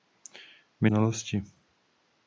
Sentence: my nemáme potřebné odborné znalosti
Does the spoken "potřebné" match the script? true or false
false